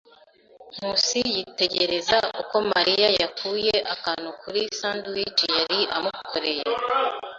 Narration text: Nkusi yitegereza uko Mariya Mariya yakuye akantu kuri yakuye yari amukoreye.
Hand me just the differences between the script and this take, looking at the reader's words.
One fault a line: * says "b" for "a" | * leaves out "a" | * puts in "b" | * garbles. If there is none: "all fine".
* leaves out "Mariya"
* says "sandwich" for "yakuye"